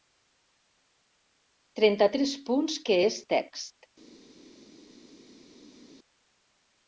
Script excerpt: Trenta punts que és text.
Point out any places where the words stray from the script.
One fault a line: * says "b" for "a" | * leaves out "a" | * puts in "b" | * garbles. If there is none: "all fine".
* puts in "tres"